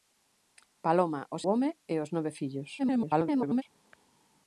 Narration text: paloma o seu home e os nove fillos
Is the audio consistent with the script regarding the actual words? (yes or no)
no